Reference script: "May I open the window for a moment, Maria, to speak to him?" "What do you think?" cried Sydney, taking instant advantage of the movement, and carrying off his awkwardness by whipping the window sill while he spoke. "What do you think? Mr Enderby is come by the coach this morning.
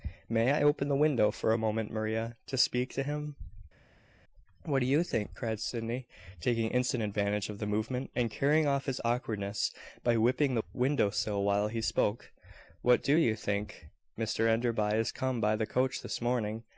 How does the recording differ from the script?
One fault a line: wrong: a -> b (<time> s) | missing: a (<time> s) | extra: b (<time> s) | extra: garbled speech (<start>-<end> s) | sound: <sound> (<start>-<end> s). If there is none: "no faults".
no faults